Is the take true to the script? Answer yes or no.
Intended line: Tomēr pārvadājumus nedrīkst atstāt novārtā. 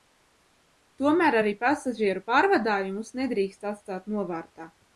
no